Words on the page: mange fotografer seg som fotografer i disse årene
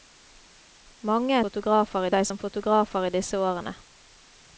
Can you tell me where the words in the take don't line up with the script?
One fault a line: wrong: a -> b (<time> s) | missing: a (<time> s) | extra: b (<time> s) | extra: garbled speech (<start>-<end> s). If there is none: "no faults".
no faults